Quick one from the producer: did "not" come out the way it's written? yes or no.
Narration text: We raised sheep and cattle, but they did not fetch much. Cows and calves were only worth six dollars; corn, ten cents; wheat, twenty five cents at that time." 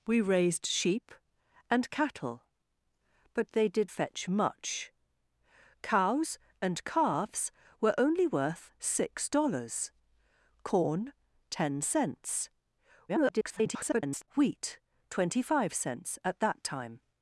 no